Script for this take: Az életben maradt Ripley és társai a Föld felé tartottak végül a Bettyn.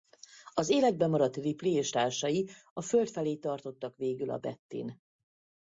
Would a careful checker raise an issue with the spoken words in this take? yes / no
no